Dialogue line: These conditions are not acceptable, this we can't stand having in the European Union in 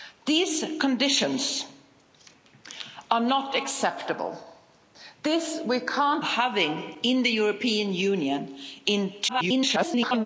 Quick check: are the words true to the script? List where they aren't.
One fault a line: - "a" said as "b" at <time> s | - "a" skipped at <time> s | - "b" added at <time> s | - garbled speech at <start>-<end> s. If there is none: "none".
- "stand" skipped at 6.2 s
- garbled speech at 9.3-10.3 s